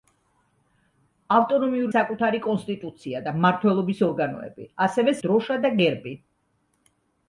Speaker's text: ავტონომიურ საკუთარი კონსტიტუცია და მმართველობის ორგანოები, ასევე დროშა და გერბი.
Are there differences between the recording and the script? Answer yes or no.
no